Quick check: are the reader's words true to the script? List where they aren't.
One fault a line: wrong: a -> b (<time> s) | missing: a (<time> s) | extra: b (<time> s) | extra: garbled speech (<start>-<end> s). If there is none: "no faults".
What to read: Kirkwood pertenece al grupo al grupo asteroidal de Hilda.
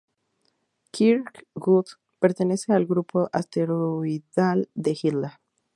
missing: al grupo (3.3 s)